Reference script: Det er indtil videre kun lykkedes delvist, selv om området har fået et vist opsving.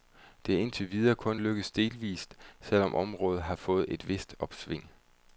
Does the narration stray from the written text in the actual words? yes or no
no